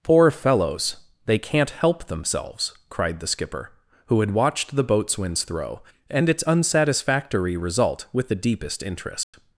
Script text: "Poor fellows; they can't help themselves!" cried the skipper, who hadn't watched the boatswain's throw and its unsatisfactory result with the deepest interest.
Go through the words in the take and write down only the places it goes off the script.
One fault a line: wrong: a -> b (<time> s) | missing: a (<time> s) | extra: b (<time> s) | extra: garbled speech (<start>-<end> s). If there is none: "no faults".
wrong: hadn't -> had (4.2 s)